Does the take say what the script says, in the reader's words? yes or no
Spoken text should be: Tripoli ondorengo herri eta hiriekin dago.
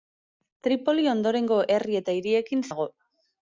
yes